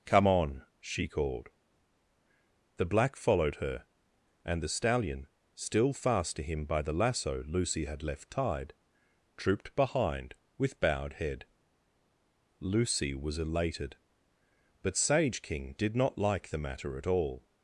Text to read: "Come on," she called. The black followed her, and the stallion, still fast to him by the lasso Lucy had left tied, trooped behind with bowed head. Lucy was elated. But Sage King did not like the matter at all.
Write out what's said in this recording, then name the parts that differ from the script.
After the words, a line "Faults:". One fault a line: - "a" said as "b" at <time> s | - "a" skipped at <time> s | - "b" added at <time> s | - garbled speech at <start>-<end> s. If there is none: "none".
"Come on," she called. The black followed her, and the stallion, still fast to him by the lasso Lucy had left tied, trooped behind with bowed head. Lucy was elated. But Sage King did not like the matter at all.
Faults:
none